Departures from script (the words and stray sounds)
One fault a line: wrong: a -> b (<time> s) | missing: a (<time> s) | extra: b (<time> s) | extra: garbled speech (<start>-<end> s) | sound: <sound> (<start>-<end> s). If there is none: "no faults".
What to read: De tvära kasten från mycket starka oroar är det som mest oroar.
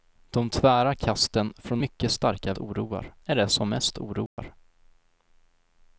sound: dropout (4.3-4.4 s)